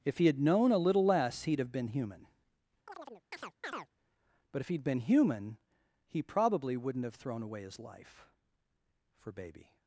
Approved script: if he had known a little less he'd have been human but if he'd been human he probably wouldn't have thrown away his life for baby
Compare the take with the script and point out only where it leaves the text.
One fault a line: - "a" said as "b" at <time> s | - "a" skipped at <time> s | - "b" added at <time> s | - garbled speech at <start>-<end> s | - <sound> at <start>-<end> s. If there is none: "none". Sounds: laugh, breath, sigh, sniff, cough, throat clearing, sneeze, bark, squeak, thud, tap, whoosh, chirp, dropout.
- chirp at 2.9-3.9 s